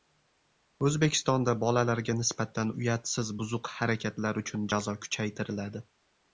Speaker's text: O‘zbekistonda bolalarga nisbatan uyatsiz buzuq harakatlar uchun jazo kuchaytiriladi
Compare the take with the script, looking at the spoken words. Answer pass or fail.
pass